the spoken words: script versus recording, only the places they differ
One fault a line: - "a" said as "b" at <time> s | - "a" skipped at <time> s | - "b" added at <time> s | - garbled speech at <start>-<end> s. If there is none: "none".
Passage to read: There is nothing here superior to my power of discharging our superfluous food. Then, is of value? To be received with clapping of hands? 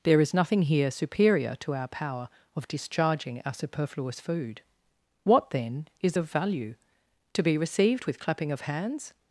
- "my" said as "our" at 1.7 s
- "What" added at 5.2 s